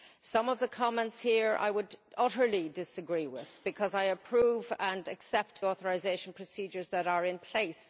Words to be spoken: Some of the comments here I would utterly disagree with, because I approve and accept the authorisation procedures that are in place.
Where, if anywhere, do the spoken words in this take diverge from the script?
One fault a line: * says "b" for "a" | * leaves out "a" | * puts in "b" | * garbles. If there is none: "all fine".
* leaves out "the"